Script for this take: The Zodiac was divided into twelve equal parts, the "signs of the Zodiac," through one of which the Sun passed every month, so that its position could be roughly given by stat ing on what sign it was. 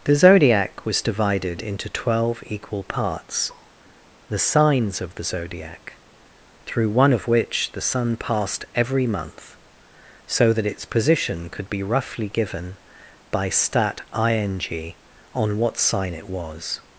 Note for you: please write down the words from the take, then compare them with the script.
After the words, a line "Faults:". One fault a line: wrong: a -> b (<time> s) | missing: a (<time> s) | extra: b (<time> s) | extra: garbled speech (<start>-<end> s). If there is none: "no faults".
The Zodiac was divided into twelve equal parts, the "signs of the Zodiac," through one of which the Sun passed every month, so that its position could be roughly given by stat ing on what sign it was.
Faults:
no faults